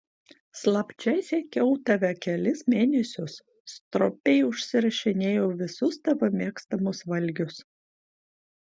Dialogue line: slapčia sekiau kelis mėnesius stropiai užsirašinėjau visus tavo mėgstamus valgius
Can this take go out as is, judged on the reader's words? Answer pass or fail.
fail